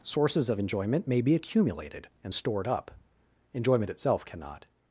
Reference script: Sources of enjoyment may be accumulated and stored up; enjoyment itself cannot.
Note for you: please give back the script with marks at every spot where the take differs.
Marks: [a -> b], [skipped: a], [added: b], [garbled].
Sources of enjoyment may be accumulated and stored up; enjoyment itself cannot.